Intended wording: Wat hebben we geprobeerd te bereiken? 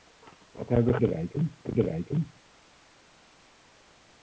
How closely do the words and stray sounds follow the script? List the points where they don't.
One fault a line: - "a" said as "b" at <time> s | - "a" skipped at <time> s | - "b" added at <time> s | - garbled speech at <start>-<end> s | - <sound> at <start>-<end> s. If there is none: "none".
- "geprobeerd" said as "bereiken" at 1.0 s